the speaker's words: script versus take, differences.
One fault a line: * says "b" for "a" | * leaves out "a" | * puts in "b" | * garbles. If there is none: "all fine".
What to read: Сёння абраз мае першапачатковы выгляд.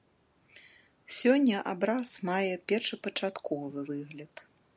all fine